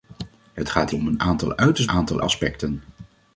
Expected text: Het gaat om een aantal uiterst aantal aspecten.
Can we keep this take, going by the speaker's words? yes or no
yes